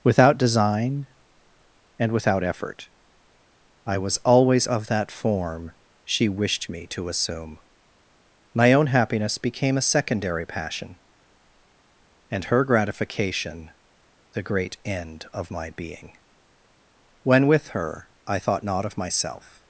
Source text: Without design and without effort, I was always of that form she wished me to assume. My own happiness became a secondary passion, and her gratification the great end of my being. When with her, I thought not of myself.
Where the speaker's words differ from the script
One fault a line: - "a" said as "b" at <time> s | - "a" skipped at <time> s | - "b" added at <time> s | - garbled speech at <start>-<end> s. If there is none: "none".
none